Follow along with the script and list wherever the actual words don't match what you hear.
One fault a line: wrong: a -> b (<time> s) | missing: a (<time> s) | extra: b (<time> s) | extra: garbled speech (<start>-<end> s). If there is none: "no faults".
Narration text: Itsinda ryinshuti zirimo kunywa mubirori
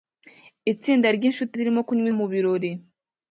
no faults